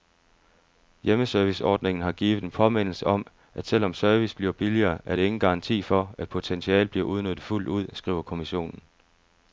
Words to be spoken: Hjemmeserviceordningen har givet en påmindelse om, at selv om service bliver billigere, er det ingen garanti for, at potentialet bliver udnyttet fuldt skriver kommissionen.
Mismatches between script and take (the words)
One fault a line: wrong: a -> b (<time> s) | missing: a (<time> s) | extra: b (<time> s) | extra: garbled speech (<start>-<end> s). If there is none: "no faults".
extra: ud (7.7 s)